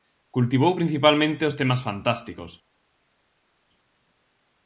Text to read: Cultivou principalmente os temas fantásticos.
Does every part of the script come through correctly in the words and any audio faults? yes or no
yes